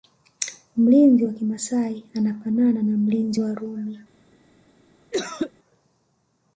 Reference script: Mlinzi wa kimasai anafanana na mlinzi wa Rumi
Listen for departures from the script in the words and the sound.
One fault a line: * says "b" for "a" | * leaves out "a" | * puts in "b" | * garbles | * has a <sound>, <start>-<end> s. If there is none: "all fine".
* has a cough, 5.1-5.5 s